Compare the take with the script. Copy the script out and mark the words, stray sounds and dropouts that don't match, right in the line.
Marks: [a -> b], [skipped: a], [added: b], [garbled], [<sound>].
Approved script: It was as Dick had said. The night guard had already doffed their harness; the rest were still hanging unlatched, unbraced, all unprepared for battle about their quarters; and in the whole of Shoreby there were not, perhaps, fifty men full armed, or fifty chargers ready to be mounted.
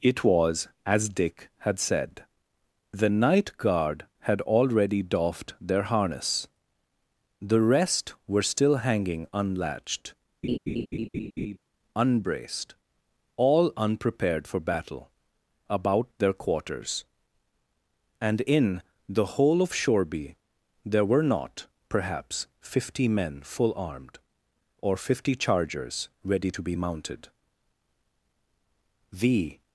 It was as Dick had said. The night guard had already doffed their harness; the rest were still hanging unlatched, [laugh] unbraced, all unprepared for battle about their quarters; and in the whole of Shoreby there were not, perhaps, fifty men full armed, or fifty chargers ready to be mounted. [added: The]